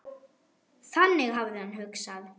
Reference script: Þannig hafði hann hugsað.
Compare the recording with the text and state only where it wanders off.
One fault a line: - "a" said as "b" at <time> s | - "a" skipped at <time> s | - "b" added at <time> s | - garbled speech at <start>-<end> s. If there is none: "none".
none